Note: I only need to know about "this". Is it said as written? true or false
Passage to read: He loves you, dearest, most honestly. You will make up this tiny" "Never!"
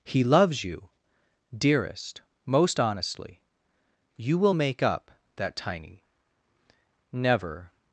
false